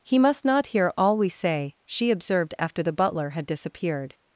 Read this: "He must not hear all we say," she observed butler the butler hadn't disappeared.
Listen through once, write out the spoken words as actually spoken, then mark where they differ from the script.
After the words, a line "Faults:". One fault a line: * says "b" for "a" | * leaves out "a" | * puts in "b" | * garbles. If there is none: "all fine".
"He must not hear all we say," she observed after the butler had disappeared.
Faults:
* says "after" for "butler"
* says "had" for "hadn't"